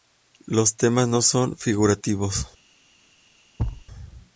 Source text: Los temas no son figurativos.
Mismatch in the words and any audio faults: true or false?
true